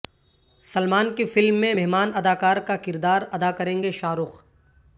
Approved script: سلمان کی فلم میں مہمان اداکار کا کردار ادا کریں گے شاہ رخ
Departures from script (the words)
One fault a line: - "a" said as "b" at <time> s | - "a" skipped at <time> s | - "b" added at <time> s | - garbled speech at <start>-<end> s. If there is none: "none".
none